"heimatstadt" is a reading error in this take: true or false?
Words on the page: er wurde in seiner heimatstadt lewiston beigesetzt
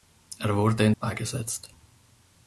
true